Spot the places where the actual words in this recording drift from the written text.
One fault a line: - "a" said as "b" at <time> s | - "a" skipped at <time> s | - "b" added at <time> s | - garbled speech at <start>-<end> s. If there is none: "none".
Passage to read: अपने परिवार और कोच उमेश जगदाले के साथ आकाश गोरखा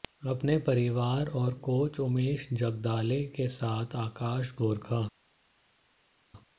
none